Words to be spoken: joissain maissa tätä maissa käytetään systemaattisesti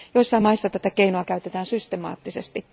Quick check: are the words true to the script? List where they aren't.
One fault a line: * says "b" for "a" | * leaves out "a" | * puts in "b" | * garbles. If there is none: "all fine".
* says "keinoa" for "maissa"